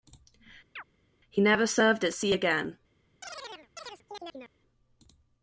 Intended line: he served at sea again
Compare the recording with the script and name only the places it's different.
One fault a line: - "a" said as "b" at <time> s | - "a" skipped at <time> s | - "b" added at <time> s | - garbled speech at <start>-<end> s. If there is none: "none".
- "never" added at 1.4 s